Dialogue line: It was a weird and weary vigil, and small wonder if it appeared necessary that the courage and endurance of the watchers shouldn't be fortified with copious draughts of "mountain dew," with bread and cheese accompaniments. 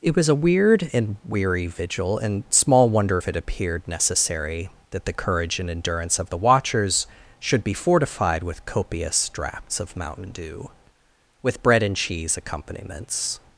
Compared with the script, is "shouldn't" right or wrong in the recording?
wrong